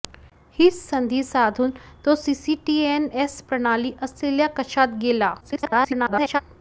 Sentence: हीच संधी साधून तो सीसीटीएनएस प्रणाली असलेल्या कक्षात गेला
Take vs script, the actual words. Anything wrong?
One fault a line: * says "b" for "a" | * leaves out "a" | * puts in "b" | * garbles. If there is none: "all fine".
* garbles